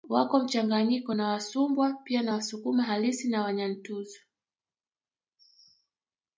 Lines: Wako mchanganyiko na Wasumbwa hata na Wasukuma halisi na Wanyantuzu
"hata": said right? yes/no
no